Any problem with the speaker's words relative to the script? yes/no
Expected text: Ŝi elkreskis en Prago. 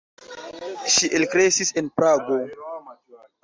no